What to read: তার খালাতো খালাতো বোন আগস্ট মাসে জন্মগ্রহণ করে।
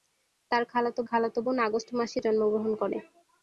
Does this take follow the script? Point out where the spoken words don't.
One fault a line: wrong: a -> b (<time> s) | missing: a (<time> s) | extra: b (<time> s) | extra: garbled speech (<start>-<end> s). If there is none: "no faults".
no faults